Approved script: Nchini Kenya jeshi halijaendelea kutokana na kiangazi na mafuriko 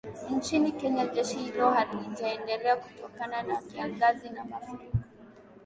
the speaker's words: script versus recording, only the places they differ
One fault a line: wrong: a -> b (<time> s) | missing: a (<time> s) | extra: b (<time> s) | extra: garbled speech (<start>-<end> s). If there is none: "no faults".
extra: hilo (1.4 s)